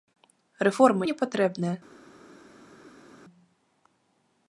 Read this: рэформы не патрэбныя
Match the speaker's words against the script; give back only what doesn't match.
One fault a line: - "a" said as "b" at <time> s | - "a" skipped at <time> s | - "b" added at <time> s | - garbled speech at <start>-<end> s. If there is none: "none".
none